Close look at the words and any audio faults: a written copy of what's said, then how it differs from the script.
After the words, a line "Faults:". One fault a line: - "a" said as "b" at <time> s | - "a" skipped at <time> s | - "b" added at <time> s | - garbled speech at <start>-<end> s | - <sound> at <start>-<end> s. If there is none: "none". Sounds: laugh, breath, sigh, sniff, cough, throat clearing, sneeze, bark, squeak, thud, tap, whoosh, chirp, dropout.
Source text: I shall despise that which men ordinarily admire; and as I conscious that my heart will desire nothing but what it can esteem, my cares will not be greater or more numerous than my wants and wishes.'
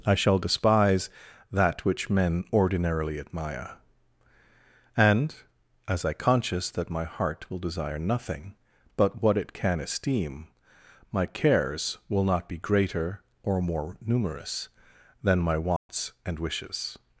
I shall despise that which men ordinarily admire; and as I conscious that my heart will desire nothing but what it can esteem, my cares will not be greater or more numerous than my wants and wishes.'
Faults:
- dropout at 15.8-15.9 s